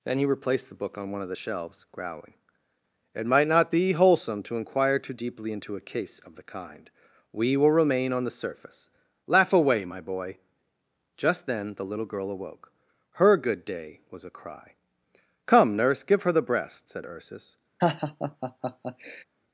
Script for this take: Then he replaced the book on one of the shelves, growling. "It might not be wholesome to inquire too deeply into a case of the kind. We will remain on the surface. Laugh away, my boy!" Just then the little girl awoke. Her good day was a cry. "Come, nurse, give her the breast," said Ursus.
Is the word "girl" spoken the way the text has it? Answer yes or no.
yes